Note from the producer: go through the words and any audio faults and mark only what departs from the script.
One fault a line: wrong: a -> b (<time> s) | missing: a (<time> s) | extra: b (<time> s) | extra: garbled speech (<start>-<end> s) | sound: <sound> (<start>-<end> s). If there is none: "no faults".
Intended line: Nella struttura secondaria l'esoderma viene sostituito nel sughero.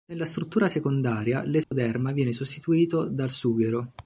sound: dropout (1.6-1.7 s)
wrong: nel -> dal (3.1 s)